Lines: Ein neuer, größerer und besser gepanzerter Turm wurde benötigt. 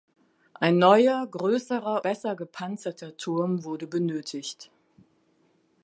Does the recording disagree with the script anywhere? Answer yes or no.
yes